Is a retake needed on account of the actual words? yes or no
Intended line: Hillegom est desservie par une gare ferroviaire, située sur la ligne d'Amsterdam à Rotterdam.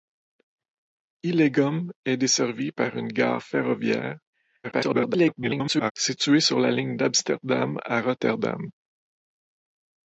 yes